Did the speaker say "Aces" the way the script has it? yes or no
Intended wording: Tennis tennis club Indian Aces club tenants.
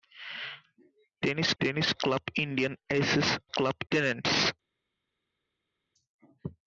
yes